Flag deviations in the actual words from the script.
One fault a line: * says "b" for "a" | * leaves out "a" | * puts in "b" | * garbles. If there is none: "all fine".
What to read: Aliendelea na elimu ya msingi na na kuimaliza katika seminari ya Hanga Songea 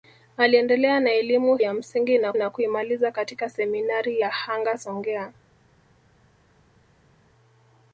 all fine